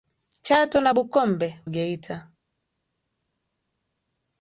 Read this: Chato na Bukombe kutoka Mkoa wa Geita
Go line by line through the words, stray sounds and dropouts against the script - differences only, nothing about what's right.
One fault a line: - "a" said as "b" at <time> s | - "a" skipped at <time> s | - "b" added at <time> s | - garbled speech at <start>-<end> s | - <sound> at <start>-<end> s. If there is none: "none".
- "kutoka Mkoa wa" skipped at 1.6 s